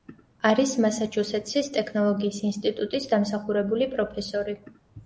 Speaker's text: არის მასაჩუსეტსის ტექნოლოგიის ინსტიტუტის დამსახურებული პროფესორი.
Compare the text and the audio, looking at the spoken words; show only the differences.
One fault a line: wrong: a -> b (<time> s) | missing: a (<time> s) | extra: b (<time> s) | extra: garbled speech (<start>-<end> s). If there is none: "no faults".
no faults